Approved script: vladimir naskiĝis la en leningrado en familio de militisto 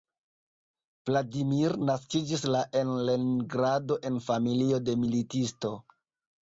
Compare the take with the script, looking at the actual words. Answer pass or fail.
pass